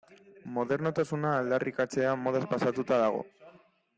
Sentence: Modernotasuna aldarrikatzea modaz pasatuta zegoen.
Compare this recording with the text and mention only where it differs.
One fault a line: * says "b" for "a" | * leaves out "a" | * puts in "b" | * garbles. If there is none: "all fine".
* says "dago" for "zegoen"